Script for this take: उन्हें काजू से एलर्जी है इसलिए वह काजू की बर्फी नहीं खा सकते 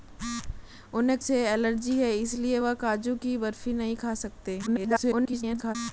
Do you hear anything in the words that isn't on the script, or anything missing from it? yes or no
yes